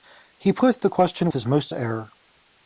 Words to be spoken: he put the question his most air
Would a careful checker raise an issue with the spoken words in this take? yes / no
no